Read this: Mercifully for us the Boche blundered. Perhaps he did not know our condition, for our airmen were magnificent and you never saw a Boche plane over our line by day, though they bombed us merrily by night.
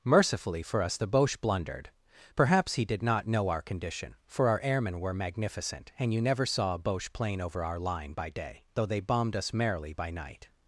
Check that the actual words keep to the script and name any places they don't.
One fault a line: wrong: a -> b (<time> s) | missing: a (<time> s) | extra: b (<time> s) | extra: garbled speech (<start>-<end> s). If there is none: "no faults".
no faults